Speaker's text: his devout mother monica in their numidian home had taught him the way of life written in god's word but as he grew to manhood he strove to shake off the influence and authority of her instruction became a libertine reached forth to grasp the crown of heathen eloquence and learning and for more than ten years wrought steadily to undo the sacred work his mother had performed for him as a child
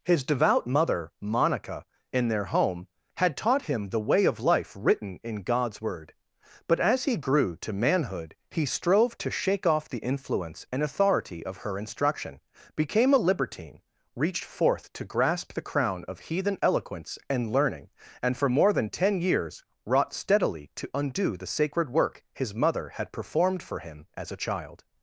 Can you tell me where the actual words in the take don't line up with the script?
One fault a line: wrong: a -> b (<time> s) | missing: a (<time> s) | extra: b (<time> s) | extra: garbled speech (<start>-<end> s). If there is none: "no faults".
missing: numidian (2.4 s)